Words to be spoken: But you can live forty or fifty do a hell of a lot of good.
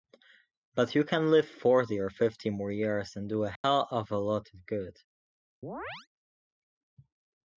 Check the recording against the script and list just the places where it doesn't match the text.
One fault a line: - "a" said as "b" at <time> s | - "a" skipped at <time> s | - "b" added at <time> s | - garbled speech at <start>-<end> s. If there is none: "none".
- "more years and" added at 2.5 s